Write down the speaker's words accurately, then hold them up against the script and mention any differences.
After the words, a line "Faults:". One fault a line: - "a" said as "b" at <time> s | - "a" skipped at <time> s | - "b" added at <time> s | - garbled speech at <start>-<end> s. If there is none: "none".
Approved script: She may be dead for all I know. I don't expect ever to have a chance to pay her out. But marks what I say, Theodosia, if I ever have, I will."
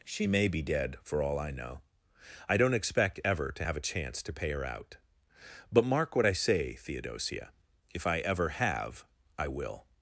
She may be dead for all I know. I don't expect ever to have a chance to pay her out. But mark what I say, Theodosia, if I ever have, I will."
Faults:
- "marks" said as "mark" at 5.8 s